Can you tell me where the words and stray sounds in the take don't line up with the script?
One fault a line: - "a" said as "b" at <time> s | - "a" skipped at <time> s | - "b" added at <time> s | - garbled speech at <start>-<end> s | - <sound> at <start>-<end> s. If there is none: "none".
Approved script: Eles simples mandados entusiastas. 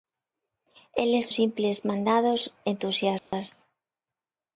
- dropout at 3.2-3.3 s